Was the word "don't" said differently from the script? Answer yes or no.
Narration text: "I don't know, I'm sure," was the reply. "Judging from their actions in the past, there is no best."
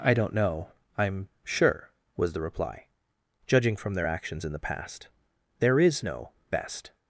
no